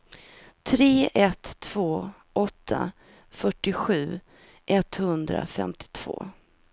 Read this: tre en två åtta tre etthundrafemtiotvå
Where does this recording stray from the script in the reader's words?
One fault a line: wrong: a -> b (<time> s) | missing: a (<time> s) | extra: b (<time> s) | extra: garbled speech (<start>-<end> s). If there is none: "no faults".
wrong: en -> ett (1.1 s)
wrong: tre -> fyrtiosju (3.3 s)